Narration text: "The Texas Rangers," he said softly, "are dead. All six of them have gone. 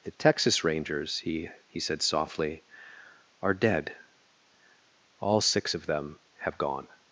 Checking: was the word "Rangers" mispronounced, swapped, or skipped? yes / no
no